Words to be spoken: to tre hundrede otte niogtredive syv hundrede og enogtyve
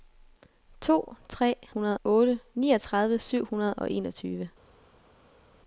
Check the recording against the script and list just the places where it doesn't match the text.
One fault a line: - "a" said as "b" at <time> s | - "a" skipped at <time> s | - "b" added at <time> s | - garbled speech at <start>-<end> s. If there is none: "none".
none